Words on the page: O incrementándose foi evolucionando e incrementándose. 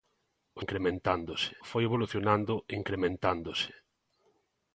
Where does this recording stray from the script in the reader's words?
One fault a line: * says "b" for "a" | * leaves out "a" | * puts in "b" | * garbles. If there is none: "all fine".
all fine